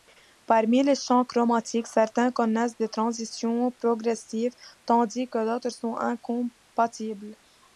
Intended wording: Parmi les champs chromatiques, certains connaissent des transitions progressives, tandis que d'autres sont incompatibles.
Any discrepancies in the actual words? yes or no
no